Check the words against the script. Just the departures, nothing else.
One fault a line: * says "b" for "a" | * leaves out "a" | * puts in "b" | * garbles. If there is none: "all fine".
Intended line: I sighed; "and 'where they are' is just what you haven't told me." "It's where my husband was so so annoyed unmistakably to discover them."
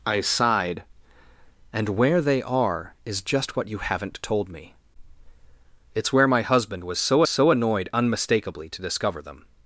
all fine